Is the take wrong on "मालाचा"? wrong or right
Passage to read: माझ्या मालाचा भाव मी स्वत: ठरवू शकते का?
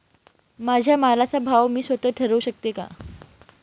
right